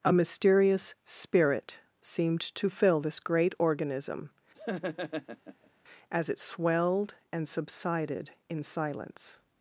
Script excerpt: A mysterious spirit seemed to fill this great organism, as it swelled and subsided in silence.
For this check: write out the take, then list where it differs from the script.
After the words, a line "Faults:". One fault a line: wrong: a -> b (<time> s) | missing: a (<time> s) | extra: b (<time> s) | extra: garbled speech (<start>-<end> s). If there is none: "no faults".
A mysterious spirit seemed to fill this great organism, as it swelled and subsided in silence.
Faults:
no faults